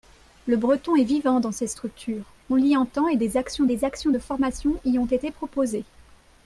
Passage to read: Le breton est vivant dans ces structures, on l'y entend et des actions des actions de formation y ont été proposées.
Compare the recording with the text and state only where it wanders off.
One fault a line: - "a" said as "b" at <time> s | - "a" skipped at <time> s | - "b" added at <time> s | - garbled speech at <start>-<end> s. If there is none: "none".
none